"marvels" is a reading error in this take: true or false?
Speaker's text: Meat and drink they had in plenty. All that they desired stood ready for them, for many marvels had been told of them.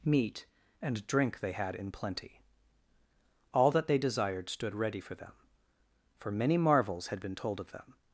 false